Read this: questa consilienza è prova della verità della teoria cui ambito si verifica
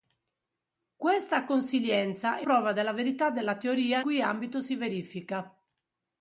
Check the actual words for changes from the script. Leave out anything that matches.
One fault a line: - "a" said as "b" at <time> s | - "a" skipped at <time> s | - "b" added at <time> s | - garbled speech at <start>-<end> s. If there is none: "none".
none